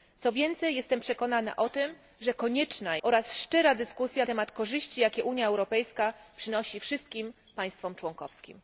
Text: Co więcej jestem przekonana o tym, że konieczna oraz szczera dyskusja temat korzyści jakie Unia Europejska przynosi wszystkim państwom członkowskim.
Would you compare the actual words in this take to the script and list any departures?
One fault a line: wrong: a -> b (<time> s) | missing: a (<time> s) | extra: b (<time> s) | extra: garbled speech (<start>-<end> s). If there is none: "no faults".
no faults